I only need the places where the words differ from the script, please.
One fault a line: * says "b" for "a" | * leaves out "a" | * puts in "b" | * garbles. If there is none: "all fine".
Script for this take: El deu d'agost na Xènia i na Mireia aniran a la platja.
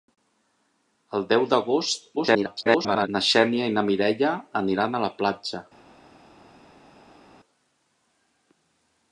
* garbles